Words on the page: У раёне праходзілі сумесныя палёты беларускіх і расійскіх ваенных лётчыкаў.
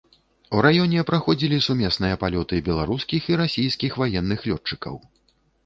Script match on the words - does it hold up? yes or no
yes